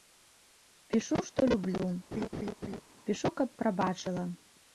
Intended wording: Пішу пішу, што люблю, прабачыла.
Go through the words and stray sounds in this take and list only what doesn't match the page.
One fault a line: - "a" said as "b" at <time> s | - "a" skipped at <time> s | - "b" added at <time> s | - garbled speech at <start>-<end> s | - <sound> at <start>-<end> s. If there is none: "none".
- "пішу" skipped at 1.2 s
- laugh at 2.1-2.8 s
- "пішу каб" added at 3.1 s